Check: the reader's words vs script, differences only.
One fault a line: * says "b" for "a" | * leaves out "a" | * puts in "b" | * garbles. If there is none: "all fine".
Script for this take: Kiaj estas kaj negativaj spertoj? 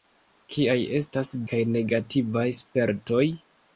all fine